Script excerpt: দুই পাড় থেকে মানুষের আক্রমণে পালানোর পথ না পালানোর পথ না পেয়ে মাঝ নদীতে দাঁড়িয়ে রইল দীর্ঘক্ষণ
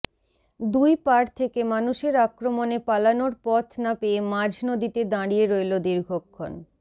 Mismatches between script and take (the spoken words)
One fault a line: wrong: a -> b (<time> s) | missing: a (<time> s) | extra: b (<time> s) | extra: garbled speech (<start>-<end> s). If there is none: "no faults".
missing: পালানোর পথ না (3.9 s)